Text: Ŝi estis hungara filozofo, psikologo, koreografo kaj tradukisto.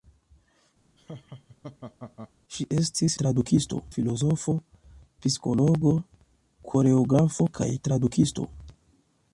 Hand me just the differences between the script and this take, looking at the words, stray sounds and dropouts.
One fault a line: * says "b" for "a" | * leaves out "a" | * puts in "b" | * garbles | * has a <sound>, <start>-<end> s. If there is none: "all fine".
* has a laugh, 1.0-2.3 s
* says "tradukisto" for "hungara"